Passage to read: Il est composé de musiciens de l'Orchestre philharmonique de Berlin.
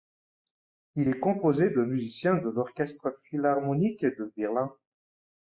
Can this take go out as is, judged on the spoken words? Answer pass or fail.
pass